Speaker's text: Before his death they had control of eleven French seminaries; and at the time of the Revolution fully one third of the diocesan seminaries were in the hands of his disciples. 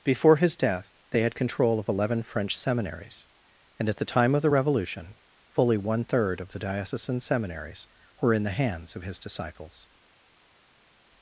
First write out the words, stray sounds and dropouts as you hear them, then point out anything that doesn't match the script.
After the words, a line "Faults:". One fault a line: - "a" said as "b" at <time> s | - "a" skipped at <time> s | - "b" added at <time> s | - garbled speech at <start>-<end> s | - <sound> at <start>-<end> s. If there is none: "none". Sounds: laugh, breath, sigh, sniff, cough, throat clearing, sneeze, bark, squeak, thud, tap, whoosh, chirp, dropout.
Before his death they had control of eleven French seminaries; and at the time of the Revolution fully one third of the diocesan seminaries were in the hands of his disciples.
Faults:
none